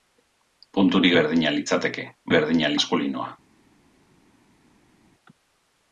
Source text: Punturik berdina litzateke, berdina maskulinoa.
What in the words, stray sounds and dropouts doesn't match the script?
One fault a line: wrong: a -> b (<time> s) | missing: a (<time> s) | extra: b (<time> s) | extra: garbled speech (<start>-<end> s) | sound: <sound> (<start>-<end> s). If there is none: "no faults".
no faults